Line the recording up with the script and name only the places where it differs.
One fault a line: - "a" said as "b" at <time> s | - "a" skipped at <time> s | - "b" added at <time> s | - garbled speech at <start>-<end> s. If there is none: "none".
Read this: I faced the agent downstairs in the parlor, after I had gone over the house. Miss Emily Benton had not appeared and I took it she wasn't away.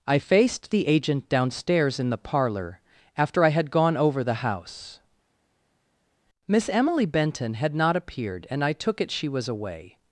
- "wasn't" said as "was" at 9.3 s